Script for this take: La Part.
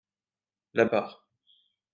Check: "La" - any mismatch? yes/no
no